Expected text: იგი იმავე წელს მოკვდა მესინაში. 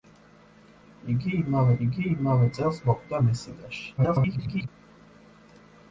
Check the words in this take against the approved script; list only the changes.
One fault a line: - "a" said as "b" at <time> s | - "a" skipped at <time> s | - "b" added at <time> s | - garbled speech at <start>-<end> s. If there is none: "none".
- "იგი იმავე" added at 1.9 s
- garbled speech at 4.0-4.7 s